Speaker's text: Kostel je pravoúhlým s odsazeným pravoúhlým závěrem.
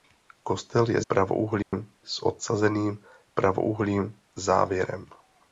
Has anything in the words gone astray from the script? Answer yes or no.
no